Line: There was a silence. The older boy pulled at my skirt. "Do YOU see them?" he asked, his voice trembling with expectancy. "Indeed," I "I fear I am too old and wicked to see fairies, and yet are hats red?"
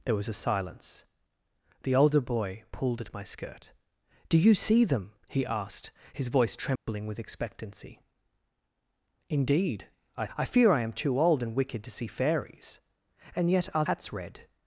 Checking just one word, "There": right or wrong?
right